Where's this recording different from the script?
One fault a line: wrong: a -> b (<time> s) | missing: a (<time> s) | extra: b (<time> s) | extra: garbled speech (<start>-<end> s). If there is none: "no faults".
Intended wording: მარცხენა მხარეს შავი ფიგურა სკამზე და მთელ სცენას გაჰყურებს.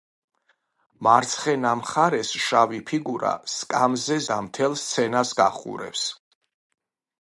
no faults